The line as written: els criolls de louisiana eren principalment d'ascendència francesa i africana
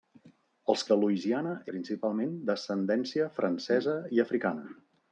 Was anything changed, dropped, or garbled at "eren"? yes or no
yes